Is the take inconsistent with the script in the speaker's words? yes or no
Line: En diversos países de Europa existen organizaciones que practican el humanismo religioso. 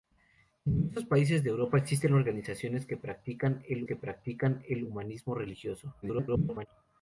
yes